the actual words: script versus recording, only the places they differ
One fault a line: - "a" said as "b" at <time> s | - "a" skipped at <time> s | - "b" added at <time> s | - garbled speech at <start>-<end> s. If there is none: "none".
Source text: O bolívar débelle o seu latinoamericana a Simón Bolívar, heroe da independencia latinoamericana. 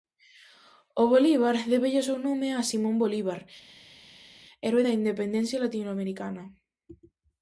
- "latinoamericana" said as "nome" at 2.3 s